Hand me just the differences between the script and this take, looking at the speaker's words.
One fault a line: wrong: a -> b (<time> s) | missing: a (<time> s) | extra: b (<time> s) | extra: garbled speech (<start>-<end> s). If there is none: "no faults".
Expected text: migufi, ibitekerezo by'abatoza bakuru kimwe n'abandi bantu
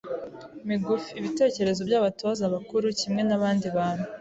no faults